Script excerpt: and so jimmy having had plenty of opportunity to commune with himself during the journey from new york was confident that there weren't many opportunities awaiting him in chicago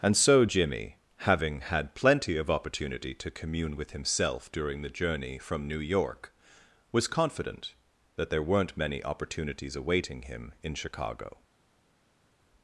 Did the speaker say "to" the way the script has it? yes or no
yes